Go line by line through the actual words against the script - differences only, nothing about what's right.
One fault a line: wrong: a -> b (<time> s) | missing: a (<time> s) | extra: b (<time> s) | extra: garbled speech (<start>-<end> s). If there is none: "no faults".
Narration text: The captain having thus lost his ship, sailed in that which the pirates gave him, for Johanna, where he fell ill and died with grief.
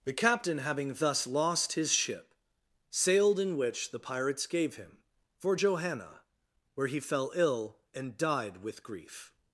missing: that (3.5 s)